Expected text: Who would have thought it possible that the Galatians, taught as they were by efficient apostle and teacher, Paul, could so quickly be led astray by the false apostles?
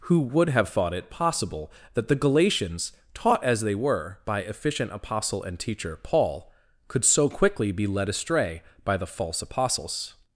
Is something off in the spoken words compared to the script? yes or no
no